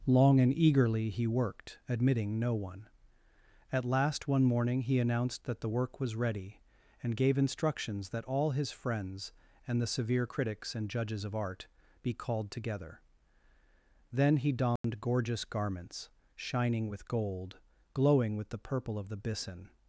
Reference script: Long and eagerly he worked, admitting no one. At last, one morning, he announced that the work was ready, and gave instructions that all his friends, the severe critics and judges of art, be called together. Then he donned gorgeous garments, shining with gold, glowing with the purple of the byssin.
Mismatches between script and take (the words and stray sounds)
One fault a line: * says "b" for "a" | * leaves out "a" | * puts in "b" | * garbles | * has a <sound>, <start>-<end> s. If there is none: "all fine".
* puts in "and"
* has a dropout, 14.8-14.8 s